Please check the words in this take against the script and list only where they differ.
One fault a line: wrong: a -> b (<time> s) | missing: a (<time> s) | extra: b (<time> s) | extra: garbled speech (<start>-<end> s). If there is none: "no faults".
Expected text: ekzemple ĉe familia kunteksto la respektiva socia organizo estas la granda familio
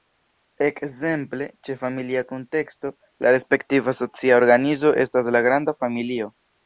no faults